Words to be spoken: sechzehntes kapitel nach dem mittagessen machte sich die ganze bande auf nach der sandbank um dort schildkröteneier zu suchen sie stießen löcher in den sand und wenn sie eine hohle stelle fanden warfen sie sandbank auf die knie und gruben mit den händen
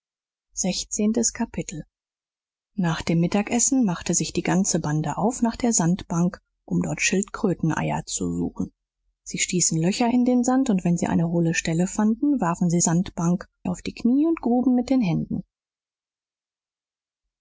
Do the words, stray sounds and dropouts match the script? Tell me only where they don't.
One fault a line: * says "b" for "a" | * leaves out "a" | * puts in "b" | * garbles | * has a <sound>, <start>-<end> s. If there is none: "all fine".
all fine